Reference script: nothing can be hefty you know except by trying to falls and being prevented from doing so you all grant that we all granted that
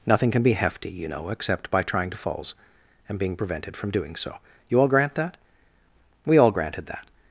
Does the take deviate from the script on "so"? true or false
false